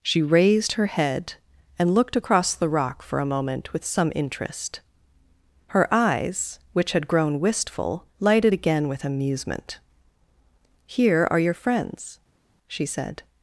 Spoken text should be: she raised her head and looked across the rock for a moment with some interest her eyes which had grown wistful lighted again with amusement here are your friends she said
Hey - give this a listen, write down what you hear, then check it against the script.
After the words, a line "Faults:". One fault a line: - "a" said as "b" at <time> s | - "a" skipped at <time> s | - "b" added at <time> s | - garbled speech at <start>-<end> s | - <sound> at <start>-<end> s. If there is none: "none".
she raised her head and looked across the rock for a moment with some interest her eyes which had grown wistful lighted again with amusement here are your friends she said
Faults:
none